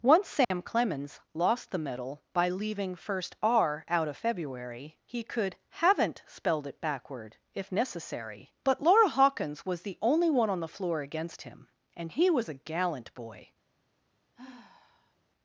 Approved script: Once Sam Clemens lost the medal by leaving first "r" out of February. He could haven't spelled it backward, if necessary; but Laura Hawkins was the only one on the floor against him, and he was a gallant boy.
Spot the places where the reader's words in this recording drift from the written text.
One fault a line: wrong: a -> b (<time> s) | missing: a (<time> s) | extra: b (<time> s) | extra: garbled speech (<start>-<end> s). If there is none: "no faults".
no faults